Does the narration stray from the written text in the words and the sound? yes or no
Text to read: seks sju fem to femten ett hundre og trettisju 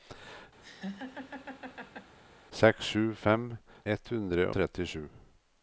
yes